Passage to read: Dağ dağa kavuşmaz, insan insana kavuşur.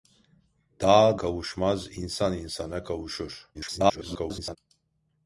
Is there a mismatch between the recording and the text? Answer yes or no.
yes